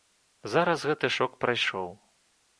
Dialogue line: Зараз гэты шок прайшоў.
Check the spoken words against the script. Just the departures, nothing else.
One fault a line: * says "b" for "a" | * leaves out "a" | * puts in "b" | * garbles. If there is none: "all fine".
all fine